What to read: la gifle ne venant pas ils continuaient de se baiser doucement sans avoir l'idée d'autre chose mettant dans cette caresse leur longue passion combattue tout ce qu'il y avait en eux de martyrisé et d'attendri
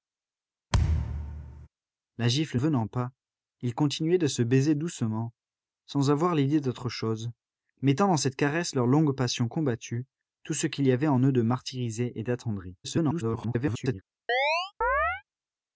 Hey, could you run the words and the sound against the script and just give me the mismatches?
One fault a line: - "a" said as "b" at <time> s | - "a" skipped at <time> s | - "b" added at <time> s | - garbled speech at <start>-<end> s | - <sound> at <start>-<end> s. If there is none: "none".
- thud at 0.7-1.7 s
- "ne" skipped at 2.6 s
- garbled speech at 12.8-14.0 s
- chirp at 14.3-15.2 s